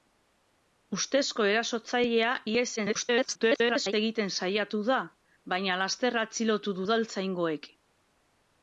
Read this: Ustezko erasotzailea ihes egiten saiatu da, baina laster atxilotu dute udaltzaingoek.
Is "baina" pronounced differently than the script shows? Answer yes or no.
no